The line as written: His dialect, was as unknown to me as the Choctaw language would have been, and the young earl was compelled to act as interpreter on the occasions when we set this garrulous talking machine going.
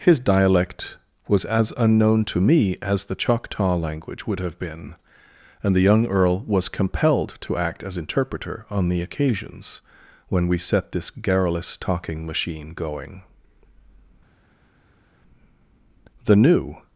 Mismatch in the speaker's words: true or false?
true